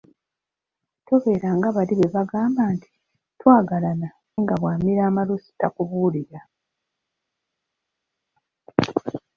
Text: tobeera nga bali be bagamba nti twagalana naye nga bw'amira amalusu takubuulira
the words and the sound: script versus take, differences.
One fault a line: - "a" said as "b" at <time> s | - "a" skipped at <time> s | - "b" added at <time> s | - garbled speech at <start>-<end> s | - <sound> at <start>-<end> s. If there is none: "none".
- "naye" skipped at 4.1 s